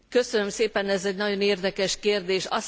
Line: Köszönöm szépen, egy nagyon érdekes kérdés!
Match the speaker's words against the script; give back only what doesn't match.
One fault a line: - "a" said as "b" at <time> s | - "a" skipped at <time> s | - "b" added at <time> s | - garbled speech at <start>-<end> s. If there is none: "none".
- "ez" added at 0.9 s